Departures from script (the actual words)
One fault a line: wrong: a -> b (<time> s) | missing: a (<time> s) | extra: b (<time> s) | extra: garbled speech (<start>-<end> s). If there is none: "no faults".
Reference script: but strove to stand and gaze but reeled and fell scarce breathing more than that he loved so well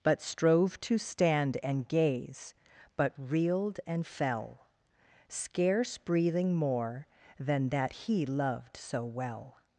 no faults